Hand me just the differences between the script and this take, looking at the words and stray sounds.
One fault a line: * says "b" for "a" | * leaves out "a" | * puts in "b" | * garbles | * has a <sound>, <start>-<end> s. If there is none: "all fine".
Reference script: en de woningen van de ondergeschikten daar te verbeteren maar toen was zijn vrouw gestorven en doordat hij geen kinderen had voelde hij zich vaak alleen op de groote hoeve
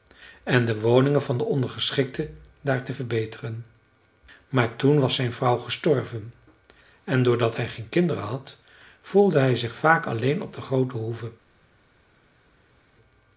all fine